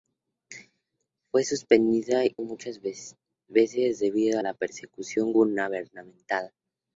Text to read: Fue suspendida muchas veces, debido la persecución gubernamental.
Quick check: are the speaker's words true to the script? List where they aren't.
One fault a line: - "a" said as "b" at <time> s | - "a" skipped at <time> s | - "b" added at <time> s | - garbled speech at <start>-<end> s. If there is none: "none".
none